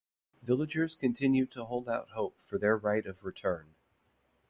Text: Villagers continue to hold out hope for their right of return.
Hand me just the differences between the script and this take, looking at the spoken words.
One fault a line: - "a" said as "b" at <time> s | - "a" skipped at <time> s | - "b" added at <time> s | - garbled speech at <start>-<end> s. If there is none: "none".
none